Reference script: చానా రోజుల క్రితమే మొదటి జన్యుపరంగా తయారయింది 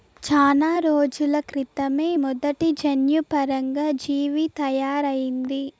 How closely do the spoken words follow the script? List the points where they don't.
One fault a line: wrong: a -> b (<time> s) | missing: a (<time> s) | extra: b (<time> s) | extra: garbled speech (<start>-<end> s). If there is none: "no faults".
extra: జీవి (4.0 s)